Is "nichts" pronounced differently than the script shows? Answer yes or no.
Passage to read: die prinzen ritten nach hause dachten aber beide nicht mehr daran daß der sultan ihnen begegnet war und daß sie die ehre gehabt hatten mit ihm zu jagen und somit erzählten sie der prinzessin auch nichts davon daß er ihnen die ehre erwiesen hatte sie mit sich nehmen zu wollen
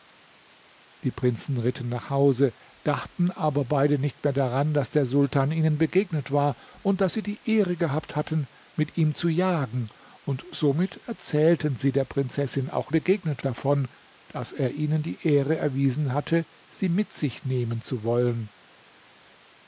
yes